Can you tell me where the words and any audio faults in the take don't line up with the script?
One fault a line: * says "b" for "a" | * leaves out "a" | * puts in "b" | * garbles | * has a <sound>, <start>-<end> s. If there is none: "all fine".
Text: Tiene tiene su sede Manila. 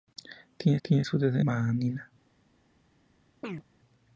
* has a chirp, 3.4-3.6 s